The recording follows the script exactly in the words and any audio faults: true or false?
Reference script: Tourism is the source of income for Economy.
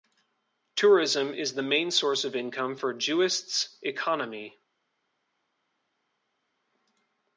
false